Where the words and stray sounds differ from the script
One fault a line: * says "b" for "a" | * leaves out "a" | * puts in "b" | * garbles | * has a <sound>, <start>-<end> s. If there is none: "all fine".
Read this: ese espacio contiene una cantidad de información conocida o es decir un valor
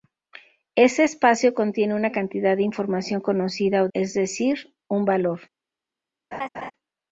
* has a laugh, 6.3-6.7 s